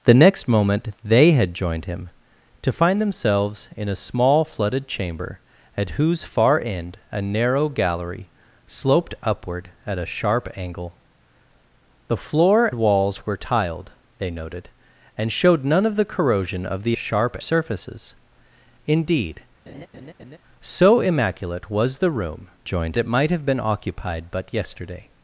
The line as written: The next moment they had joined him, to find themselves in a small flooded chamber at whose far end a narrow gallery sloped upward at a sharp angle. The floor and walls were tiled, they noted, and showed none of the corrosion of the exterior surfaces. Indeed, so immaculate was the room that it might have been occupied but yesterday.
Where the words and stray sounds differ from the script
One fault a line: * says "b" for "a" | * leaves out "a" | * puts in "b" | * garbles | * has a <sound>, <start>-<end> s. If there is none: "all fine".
* leaves out "and"
* says "sharp" for "exterior"
* has a laugh, 19.7-20.4 s
* says "joined" for "that"